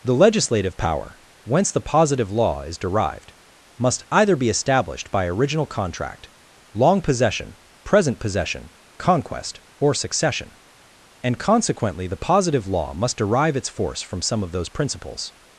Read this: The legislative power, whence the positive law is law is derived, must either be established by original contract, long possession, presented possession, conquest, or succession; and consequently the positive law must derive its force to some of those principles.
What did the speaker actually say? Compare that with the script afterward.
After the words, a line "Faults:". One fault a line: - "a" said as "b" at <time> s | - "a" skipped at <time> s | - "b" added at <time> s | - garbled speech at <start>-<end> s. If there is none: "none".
The legislative power, whence the positive law is derived, must either be established by original contract, long possession, present possession, conquest, or succession; and consequently the positive law must derive its force from some of those principles.
Faults:
- "law is" skipped at 2.8 s
- "presented" said as "present" at 7.8 s
- "to" said as "from" at 14.0 s